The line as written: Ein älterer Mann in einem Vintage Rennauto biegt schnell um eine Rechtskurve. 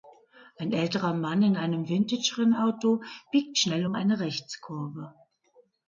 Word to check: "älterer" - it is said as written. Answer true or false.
true